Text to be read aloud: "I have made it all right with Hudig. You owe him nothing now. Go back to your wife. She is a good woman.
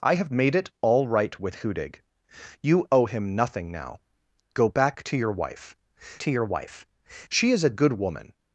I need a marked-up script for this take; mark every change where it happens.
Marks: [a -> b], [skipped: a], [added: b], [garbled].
"I have made it all right with Hudig. You owe him nothing now. Go back to your wife. [added: to your wife] She is a good woman.